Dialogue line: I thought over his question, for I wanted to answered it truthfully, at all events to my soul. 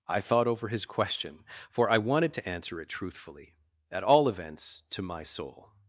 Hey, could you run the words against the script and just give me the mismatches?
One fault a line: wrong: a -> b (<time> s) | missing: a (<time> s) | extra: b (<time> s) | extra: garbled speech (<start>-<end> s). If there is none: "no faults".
wrong: answered -> answer (2.5 s)